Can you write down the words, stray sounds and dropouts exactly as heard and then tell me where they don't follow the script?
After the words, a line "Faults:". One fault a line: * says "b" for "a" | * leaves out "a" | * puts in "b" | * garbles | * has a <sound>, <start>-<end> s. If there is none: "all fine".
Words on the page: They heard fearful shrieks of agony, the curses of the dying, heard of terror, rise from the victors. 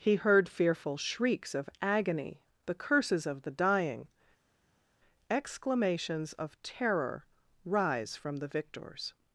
He heard fearful shrieks of agony, the curses of the dying, exclamations of terror, rise from the victors.
Faults:
* says "He" for "They"
* says "exclamations" for "heard"